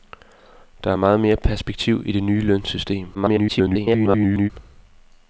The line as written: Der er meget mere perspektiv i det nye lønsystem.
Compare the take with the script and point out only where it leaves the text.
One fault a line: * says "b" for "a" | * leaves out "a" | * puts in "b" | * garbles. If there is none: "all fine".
* garbles